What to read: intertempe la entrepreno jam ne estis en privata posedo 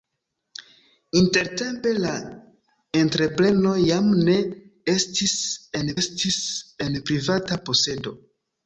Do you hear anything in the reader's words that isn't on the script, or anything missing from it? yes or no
yes